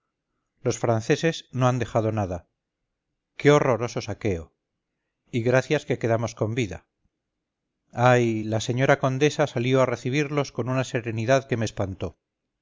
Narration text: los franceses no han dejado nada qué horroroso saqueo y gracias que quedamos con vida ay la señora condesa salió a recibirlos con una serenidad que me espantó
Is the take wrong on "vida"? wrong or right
right